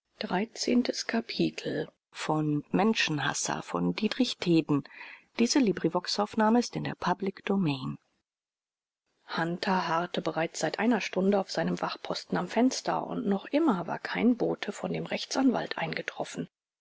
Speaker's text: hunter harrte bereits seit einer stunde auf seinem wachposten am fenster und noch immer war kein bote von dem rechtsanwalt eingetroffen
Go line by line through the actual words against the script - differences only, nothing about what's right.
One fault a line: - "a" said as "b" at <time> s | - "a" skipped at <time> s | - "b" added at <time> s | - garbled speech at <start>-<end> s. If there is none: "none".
none